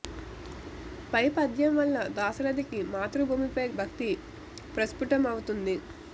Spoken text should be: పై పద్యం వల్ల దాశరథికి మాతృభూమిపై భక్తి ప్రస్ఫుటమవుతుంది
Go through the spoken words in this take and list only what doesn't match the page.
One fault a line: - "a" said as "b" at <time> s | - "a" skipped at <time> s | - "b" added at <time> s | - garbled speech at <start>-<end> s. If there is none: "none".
none